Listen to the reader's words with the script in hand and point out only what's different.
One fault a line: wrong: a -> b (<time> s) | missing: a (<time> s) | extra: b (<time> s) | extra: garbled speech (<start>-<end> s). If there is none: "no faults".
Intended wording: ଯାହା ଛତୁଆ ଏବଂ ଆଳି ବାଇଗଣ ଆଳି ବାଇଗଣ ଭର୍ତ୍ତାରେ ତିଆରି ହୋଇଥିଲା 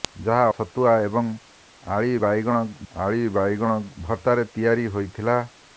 no faults